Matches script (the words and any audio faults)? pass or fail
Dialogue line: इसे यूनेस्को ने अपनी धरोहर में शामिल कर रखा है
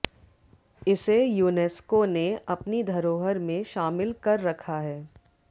pass